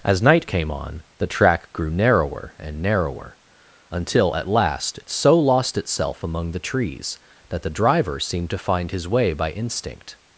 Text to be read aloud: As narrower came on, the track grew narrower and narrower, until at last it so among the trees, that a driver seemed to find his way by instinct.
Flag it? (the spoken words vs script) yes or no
yes